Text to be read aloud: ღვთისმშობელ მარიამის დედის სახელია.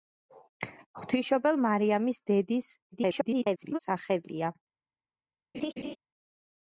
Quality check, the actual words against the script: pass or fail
fail